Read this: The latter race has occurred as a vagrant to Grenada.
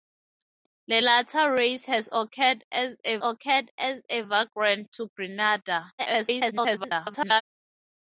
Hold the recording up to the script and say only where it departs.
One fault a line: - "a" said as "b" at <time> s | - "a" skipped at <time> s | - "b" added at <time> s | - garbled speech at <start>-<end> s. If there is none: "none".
- "occurred as a" added at 3.2 s
- garbled speech at 6.0-7.4 s